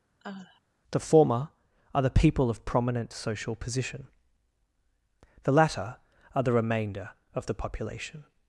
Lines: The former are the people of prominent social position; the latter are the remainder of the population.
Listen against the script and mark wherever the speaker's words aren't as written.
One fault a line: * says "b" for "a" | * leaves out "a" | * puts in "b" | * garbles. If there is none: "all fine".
all fine